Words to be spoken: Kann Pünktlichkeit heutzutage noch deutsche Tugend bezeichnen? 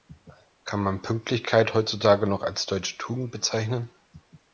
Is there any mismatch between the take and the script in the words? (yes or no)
yes